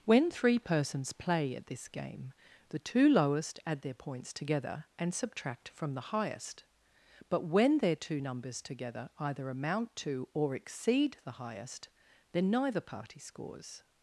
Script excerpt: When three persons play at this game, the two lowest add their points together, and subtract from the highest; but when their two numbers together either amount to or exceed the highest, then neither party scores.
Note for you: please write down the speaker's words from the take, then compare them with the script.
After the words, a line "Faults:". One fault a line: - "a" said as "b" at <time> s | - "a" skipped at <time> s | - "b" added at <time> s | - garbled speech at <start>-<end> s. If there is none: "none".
When three persons play at this game, the two lowest add their points together, and subtract from the highest; but when their two numbers together either amount to or exceed the highest, then neither party scores.
Faults:
none